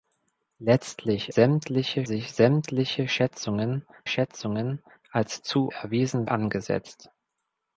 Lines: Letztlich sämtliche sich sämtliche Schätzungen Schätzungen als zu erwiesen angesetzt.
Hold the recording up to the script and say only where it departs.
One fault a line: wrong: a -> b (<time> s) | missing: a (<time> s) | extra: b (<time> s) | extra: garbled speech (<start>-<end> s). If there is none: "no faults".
no faults